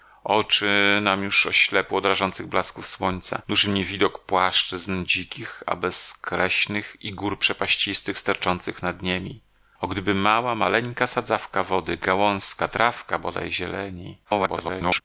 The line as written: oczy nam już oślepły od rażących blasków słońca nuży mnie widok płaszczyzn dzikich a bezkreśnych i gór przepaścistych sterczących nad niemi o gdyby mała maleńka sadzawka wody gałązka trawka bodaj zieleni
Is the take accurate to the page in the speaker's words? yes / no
no